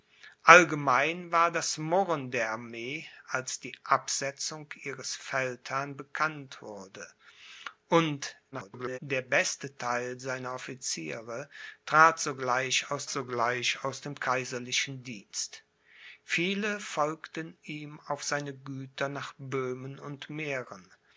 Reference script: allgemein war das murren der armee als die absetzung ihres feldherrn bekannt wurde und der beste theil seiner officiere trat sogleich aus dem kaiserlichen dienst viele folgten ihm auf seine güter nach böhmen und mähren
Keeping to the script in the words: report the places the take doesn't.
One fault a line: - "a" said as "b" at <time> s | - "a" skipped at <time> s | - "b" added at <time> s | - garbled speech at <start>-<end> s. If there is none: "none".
- garbled speech at 8.5-9.0 s
- "sogleich aus" added at 13.1 s